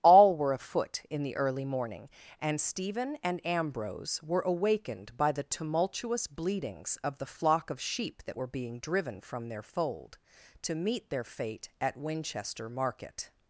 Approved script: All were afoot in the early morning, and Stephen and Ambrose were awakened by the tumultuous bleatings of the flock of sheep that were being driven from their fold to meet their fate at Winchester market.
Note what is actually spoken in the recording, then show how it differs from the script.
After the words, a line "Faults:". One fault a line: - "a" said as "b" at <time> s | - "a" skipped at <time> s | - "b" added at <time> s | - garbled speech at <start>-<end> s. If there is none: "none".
All were afoot in the early morning, and Stephen and Ambrose were awakened by the tumultuous bleatings of the flock of sheep that were being driven from their fold to meet their fate at Winchester market.
Faults:
none